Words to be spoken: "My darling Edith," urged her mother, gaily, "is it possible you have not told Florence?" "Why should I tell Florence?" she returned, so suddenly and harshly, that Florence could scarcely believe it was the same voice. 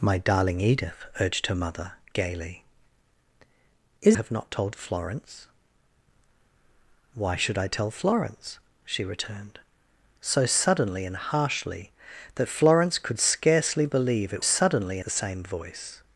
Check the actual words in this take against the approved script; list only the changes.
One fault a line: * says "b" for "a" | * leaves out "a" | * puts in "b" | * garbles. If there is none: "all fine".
* leaves out "it possible you"
* says "suddenly" for "was"